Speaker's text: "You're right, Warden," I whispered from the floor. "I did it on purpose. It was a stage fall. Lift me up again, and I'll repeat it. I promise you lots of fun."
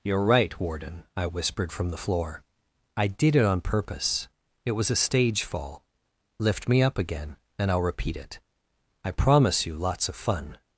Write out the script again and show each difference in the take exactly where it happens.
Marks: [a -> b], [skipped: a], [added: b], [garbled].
"You're right, Warden," I whispered from the floor. "I did it on purpose. It was a stage fall. Lift me up again, and I'll repeat it. I promise you lots of fun."